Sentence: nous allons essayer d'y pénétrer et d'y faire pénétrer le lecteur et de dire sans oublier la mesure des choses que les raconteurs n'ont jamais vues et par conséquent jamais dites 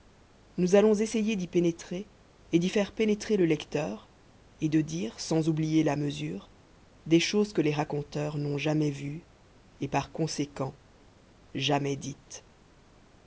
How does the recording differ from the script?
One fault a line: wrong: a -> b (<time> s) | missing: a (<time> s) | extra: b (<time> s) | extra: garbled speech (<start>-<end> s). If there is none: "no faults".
no faults